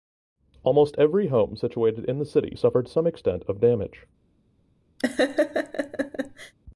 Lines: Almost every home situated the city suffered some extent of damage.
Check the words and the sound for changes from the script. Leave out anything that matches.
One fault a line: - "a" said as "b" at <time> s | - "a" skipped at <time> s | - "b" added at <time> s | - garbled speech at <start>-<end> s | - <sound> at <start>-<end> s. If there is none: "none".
- "in" added at 2.1 s
- laugh at 5.0-6.5 s